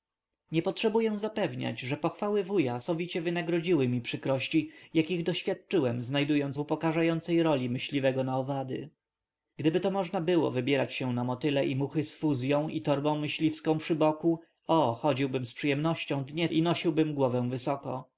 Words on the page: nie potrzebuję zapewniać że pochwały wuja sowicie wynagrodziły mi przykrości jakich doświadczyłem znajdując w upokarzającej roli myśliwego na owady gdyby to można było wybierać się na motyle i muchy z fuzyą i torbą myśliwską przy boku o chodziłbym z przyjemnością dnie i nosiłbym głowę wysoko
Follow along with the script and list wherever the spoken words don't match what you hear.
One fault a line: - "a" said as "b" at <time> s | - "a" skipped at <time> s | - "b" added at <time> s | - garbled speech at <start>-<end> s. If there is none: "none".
none